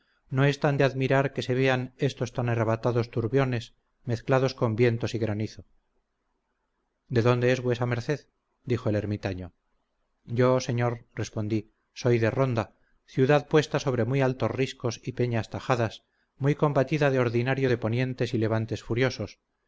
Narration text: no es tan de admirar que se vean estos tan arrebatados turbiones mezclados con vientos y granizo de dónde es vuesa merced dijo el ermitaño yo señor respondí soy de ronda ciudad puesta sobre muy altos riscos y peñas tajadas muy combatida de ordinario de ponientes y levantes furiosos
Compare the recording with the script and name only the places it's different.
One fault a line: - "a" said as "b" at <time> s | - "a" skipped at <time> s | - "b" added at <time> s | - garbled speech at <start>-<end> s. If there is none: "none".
none